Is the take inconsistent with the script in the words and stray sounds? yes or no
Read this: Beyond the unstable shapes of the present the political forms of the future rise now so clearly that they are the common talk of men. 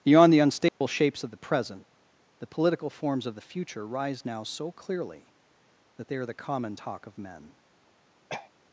yes